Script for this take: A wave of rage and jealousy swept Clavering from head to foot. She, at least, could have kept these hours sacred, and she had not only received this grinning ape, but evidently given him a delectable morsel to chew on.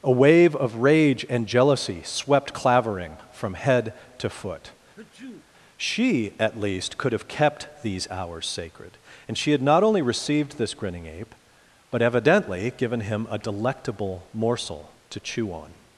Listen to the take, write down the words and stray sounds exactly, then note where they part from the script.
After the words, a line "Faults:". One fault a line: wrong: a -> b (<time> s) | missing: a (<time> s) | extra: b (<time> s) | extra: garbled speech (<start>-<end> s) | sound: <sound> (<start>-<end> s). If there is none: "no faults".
A wave of rage and jealousy swept Clavering from head to foot. She, at least, could have kept these hours sacred, and she had not only received this grinning ape, but evidently given him a delectable morsel to chew on.
Faults:
sound: sneeze (5.0-5.5 s)